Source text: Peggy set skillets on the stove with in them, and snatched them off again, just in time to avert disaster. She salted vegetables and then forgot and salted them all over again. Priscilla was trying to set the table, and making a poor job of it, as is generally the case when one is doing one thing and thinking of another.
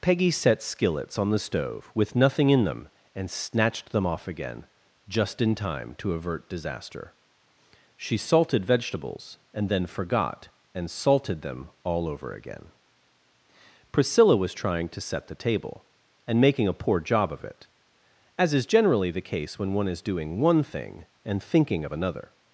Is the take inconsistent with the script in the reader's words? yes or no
yes